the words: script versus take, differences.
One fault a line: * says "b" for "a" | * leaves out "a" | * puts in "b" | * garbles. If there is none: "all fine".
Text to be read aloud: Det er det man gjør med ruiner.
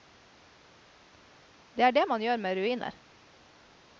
all fine